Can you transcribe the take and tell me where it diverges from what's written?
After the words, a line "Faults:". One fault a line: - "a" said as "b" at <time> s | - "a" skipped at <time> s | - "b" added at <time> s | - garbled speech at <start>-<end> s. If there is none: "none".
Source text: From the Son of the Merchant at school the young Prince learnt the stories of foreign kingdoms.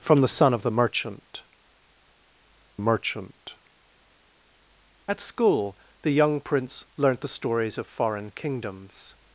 From the Son of the Merchant Merchant at school the young Prince learnt the stories of foreign kingdoms.
Faults:
- "Merchant" added at 2.8 s